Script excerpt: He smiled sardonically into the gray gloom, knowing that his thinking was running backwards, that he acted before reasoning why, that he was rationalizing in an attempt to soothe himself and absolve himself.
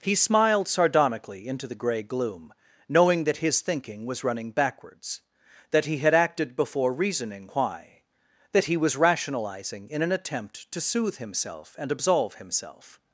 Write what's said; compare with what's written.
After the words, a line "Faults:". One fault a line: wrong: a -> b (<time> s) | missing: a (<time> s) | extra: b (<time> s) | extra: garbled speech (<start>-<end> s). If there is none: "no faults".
He smiled sardonically into the gray gloom, knowing that his thinking was running backwards, that he had acted before reasoning why, that he was rationalizing in an attempt to soothe himself and absolve himself.
Faults:
extra: had (6.0 s)